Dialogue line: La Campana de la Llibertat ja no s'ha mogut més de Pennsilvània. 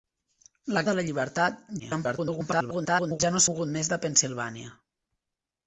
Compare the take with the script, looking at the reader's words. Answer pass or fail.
fail